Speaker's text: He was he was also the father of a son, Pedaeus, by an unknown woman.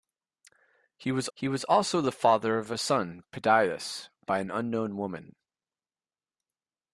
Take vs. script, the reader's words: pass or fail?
pass